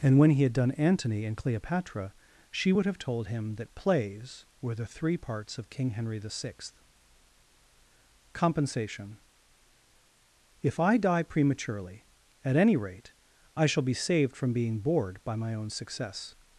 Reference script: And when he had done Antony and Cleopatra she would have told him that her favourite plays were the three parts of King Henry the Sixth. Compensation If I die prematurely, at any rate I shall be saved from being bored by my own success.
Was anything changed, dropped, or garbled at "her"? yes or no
yes